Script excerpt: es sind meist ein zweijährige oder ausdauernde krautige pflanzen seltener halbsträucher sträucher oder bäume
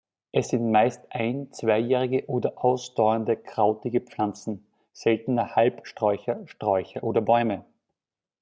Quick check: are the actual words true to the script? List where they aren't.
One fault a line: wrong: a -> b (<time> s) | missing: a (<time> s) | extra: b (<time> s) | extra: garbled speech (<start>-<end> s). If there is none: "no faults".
no faults